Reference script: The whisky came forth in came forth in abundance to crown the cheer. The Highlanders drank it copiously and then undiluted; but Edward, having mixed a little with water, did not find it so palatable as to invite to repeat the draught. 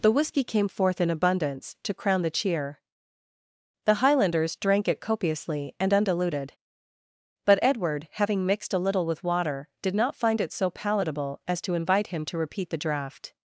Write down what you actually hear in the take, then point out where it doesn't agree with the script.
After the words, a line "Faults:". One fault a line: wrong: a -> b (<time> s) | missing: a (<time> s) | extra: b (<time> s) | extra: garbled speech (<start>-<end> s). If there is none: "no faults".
The whisky came forth in abundance to crown the cheer. The Highlanders drank it copiously and undiluted; but Edward, having mixed a little with water, did not find it so palatable as to invite him to repeat the draught.
Faults:
missing: came forth in (1.1 s)
missing: then (5.9 s)
extra: him (12.1 s)